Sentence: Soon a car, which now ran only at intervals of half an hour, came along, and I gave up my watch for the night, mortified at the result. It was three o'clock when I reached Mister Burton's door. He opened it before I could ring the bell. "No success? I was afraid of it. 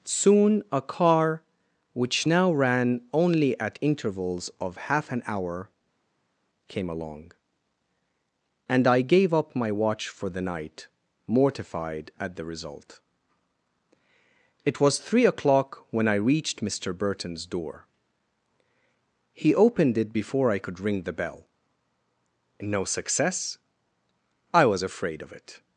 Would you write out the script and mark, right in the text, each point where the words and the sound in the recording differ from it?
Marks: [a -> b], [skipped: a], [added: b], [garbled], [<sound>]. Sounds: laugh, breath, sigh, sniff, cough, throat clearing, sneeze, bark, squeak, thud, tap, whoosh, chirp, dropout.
Soon a car, which now ran only at intervals of half an hour, came along, and I gave up my watch for the night, mortified at the result. It was three o'clock when I reached Mister Burton's door. He opened it before I could ring the bell. "No success? I was afraid of it.